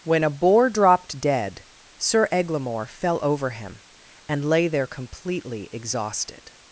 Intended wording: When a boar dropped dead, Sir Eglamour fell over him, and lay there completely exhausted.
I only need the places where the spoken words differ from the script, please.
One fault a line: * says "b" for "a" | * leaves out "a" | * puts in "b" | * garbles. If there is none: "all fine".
all fine